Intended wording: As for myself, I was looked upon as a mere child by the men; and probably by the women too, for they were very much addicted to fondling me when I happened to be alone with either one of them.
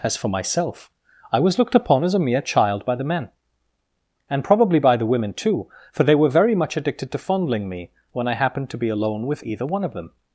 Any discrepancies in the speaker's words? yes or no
no